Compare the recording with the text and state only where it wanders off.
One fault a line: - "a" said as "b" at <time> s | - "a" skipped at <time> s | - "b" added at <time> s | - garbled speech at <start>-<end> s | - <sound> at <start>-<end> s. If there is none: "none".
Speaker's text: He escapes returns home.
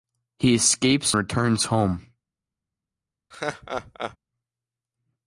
- laugh at 3.3-4.2 s